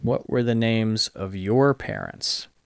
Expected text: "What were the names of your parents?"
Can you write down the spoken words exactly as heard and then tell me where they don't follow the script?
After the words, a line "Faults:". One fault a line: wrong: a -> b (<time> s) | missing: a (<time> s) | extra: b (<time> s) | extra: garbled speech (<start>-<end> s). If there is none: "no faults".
"What were the names of your parents?"
Faults:
no faults